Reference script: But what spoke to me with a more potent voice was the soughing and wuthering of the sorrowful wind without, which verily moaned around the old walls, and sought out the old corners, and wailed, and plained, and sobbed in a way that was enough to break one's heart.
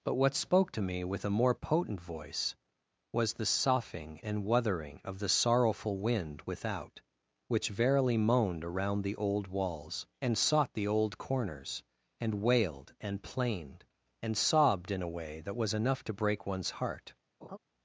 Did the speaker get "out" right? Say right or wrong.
wrong